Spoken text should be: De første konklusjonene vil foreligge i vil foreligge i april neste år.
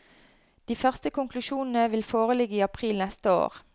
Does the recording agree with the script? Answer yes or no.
no